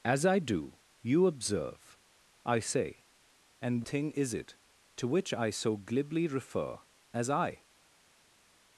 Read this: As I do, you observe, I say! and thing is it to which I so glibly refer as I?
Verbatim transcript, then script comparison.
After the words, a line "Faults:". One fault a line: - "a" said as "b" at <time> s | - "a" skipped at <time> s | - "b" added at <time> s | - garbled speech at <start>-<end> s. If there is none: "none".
As I do, you observe, I say! and thing is it to which I so glibly refer as I?
Faults:
none